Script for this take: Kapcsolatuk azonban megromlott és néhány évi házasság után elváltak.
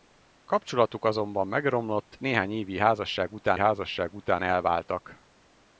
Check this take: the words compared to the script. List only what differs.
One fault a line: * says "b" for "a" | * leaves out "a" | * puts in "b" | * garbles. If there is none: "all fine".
* leaves out "és"
* puts in "házasság után"